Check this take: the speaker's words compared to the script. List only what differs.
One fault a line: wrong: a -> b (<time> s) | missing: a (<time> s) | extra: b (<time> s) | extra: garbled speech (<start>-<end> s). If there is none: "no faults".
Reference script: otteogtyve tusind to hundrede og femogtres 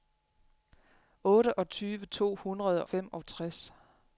missing: tusind (2.0 s)
missing: og (2.9 s)